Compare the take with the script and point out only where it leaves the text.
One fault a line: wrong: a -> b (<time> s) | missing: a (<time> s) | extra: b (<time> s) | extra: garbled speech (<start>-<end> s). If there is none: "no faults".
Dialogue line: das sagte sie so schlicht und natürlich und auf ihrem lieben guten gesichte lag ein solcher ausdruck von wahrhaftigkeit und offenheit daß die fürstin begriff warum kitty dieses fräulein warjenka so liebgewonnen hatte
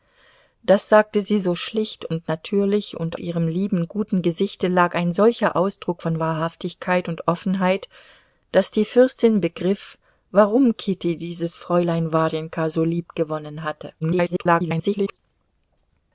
missing: auf (3.2 s)
extra: garbled speech (14.0-15.2 s)